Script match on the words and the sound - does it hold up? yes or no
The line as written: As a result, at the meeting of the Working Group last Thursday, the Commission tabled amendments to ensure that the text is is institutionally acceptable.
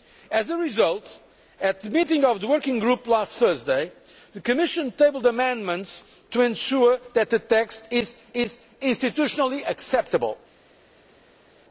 yes